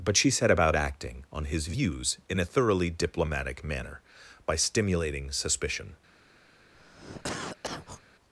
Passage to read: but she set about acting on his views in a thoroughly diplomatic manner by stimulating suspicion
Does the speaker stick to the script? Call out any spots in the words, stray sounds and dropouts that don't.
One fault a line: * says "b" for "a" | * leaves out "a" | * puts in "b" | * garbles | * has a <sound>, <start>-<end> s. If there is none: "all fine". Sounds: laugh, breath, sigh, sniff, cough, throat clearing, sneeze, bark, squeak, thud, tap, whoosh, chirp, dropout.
* has a cough, 6.7-8.0 s